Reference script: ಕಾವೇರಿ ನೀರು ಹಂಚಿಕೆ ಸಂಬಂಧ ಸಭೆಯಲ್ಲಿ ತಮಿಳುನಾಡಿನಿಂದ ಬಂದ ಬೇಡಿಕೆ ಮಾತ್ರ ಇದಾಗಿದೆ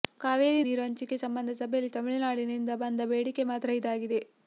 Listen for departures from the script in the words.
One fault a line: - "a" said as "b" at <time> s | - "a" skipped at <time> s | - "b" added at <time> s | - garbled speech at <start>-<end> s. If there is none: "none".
none